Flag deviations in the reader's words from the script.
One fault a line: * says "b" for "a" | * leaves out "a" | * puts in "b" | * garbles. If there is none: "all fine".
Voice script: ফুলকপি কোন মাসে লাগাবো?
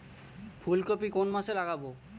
all fine